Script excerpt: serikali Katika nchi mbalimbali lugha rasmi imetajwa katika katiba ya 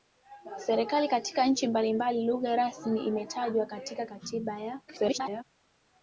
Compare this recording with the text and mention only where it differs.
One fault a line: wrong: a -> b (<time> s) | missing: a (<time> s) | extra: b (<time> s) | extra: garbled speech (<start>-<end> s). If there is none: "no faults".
extra: garbled speech (4.9-5.4 s)